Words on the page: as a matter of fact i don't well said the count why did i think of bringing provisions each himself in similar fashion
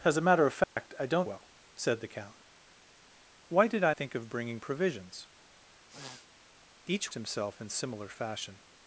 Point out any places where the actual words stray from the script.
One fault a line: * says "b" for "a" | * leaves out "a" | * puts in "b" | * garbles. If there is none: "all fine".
all fine